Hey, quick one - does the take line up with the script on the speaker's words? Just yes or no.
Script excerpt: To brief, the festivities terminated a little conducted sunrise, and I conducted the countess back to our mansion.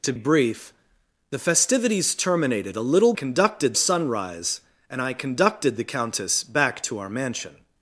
yes